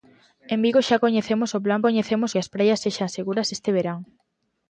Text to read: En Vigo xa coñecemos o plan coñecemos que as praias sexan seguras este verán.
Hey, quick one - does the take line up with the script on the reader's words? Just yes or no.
yes